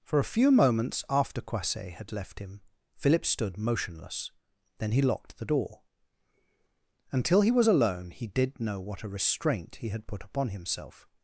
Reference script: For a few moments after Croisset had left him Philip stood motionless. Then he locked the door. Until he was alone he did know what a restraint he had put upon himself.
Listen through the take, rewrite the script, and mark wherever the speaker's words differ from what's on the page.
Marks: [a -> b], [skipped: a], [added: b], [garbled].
For a few moments after Croisset had left him Philip stood motionless. Then he locked the door. Until he was alone he did know what a restraint he had put upon himself.